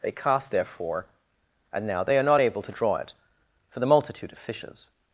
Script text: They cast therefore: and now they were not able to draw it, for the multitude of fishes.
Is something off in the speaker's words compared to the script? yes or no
yes